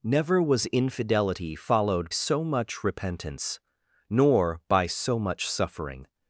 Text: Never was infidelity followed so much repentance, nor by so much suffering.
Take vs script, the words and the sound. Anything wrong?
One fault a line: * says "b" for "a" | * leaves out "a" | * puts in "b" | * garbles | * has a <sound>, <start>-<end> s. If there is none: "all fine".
all fine